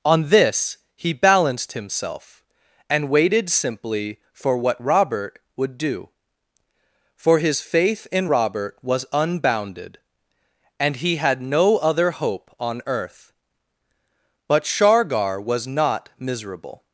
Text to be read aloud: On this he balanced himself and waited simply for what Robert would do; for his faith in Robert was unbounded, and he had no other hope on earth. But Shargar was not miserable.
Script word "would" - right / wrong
right